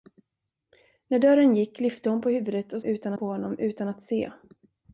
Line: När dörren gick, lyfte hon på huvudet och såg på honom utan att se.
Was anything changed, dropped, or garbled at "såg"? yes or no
yes